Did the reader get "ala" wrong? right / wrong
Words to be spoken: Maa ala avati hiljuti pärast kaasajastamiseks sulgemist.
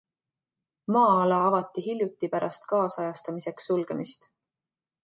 right